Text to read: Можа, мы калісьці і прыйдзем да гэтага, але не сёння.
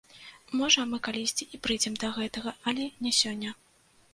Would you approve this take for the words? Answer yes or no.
yes